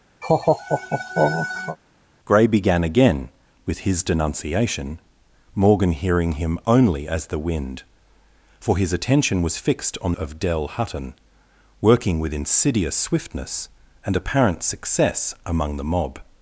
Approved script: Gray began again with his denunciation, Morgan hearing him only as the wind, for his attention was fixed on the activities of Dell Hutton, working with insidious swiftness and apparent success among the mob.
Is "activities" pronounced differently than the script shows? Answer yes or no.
yes